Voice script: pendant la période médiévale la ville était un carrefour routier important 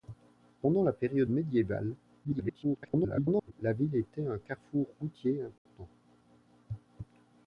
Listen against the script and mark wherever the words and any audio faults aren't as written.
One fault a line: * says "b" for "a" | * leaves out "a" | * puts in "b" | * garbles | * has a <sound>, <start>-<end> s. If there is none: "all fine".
* garbles
* has a dropout, 5.6-5.7 s